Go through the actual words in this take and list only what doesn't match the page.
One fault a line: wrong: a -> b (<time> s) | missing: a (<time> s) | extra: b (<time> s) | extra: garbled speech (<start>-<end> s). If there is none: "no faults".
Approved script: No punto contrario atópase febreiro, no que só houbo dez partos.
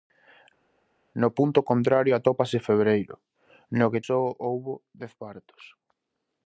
no faults